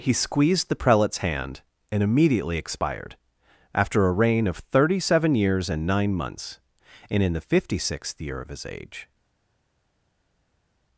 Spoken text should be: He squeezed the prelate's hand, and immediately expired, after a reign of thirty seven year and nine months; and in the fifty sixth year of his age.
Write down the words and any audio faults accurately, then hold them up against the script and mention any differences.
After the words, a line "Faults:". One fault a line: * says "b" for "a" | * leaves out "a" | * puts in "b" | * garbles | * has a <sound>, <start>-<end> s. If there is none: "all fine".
He squeezed the prelate's hand, and immediately expired, after a reign of thirty seven years and nine months; and in the fifty sixth year of his age.
Faults:
* says "years" for "year"